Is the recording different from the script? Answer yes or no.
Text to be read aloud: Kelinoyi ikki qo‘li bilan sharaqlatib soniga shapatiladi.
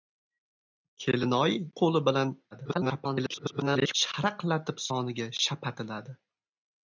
yes